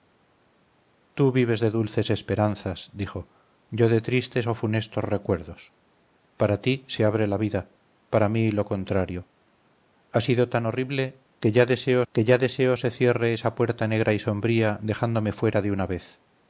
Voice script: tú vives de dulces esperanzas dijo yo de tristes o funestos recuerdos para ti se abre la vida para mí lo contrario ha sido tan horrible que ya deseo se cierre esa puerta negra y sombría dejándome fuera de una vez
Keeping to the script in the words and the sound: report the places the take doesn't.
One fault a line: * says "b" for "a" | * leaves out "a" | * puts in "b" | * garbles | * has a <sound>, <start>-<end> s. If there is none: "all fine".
* puts in "que ya deseo"